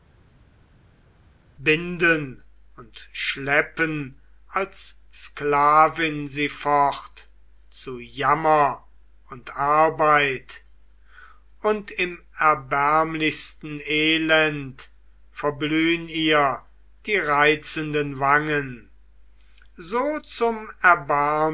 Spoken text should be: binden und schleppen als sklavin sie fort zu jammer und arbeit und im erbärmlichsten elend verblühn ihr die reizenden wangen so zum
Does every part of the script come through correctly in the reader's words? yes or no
yes